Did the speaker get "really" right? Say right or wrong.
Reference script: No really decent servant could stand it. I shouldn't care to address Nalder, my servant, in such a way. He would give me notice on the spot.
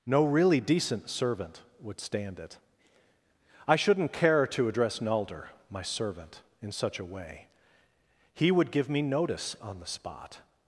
right